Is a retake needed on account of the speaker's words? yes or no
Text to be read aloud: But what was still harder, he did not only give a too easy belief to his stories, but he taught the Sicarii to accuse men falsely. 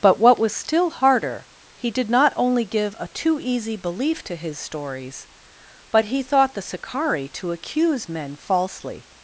yes